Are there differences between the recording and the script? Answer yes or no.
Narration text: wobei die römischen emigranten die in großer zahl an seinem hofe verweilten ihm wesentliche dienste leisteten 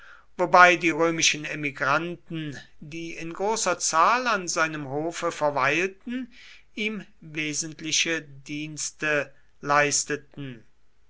no